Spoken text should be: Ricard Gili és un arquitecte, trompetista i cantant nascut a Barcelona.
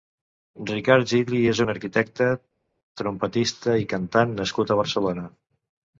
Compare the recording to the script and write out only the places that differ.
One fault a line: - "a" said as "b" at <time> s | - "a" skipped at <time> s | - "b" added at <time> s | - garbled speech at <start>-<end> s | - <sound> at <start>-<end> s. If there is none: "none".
none